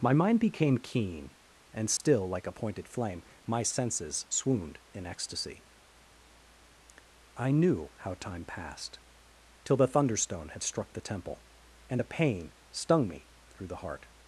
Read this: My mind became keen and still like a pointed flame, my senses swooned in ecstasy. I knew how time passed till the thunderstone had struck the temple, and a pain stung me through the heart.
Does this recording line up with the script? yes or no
yes